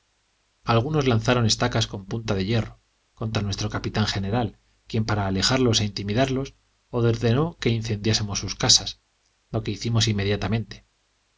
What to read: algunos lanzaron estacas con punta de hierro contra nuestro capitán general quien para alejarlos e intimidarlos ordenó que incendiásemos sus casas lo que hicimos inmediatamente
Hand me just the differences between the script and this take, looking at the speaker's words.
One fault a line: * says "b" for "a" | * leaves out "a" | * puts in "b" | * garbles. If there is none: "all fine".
all fine